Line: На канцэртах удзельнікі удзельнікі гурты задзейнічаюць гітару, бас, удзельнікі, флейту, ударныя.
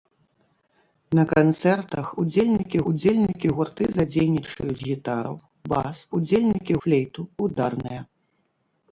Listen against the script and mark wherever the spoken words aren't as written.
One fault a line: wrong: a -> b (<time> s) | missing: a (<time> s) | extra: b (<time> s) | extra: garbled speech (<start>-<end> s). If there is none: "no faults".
no faults